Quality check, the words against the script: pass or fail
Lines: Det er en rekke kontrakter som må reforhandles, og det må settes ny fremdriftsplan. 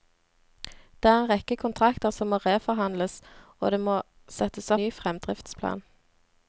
pass